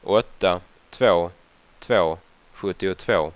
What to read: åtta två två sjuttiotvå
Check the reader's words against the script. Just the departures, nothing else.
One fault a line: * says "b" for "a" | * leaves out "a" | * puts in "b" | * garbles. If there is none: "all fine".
all fine